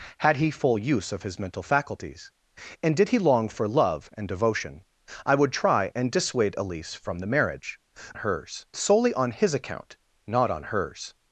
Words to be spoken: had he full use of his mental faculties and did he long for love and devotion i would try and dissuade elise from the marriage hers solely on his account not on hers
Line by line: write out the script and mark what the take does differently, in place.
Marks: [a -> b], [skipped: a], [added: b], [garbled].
had he full use of his mental faculties and did he long for love and devotion i would try and dissuade elise from the marriage hers solely on his account not on hers